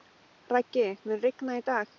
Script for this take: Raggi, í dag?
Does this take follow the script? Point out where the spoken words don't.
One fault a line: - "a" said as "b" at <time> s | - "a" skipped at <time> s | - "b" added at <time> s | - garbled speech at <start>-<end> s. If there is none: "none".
- "mun rigna" added at 1.0 s